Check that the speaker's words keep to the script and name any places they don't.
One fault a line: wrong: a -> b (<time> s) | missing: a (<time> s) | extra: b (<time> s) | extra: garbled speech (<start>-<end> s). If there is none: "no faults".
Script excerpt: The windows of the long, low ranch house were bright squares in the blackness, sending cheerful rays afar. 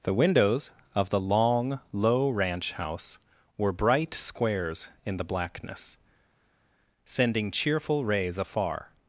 no faults